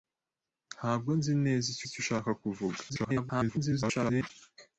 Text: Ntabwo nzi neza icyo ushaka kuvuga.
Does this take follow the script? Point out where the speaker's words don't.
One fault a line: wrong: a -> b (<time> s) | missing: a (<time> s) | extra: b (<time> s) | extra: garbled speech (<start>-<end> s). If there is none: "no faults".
extra: icyo (1.9 s)
extra: garbled speech (2.9-4.3 s)